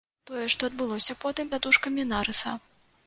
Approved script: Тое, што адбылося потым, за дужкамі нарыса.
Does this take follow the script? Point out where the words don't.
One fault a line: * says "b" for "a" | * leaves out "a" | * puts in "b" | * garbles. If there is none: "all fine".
all fine